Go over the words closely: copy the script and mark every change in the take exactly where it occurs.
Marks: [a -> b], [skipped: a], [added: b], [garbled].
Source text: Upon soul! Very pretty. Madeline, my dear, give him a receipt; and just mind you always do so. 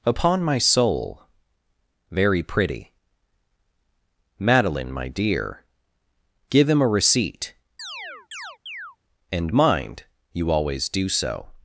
Upon [added: my] soul! Very pretty. Madeline, my dear, give him a receipt; and [skipped: just] mind you always do so.